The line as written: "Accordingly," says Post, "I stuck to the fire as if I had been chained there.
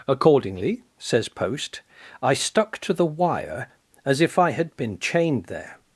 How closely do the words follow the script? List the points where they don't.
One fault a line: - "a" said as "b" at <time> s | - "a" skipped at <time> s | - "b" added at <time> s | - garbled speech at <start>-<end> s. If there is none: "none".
- "fire" said as "wire" at 3.0 s